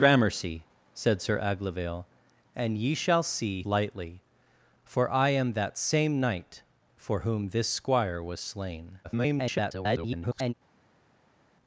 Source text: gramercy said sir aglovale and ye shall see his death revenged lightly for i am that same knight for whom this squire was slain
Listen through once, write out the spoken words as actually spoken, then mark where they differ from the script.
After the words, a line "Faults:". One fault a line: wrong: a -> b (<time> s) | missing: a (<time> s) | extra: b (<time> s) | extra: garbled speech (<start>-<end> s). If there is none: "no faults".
gramercy said sir aglovale and ye shall see lightly for i am that same knight for whom this squire was slain [garbled]
Faults:
missing: his death revenged (3.6 s)
extra: garbled speech (9.0-10.5 s)